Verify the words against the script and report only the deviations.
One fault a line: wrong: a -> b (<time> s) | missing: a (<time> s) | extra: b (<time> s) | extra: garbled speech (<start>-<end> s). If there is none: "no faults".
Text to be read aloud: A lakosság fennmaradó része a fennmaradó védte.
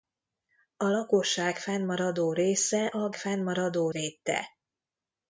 no faults